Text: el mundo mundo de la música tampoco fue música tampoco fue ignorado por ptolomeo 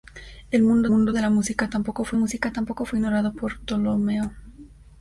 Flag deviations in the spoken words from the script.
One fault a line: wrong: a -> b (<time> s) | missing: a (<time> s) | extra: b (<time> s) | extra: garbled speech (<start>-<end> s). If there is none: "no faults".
no faults